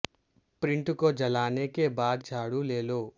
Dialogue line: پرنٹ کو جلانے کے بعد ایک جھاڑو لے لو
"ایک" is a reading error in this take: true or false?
true